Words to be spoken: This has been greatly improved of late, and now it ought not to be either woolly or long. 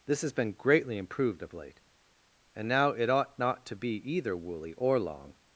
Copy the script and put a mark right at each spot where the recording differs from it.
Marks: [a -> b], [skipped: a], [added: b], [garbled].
This has been greatly improved of late, and now it ought not to be either woolly or long.